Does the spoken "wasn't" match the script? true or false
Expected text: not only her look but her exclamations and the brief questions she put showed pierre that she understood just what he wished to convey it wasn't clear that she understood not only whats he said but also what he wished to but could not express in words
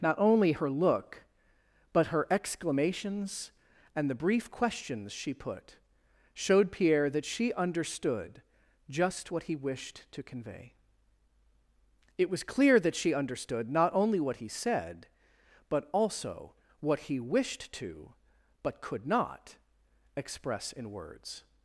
false